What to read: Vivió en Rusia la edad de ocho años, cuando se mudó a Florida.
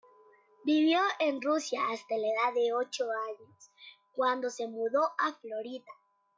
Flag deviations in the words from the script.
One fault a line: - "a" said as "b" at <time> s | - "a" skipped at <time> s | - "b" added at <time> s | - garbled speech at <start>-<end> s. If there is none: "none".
- "hasta" added at 1.9 s